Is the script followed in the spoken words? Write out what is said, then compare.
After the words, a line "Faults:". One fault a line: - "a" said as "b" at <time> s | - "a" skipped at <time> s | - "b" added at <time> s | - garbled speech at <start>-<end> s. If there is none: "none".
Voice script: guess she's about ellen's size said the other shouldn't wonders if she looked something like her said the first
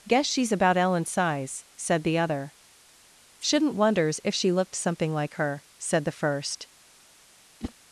guess she's about ellen's size said the other shouldn't wonders if she looked something like her said the first
Faults:
none